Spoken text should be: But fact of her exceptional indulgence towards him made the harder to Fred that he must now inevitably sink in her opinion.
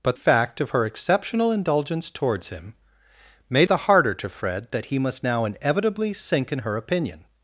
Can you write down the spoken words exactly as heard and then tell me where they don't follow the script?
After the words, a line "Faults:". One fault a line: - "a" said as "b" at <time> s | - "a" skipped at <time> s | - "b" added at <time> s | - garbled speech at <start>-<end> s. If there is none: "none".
But fact of her exceptional indulgence towards him made the harder to Fred that he must now inevitably sink in her opinion.
Faults:
none